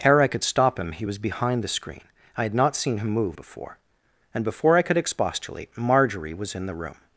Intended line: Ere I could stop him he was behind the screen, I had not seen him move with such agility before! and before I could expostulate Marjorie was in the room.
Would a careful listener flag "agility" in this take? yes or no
yes